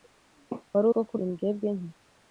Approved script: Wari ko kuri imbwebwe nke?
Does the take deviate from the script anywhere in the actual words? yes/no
no